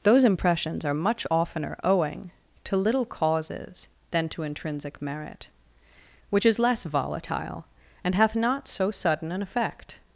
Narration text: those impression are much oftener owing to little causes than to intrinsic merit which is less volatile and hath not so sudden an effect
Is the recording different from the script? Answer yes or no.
yes